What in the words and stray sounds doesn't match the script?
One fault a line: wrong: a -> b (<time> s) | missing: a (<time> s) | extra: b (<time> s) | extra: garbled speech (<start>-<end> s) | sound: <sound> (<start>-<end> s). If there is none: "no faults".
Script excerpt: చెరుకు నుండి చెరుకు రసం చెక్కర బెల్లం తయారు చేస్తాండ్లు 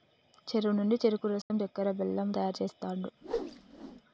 sound: dropout (1.4-1.5 s)
sound: whoosh (3.2-4.0 s)